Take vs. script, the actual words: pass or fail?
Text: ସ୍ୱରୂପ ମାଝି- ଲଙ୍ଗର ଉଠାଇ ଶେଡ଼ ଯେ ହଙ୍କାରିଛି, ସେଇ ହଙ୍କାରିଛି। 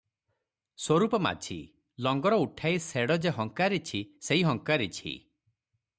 pass